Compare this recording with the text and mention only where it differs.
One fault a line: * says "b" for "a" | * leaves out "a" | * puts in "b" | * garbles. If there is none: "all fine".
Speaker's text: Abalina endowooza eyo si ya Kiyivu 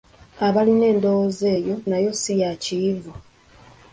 * puts in "nayo"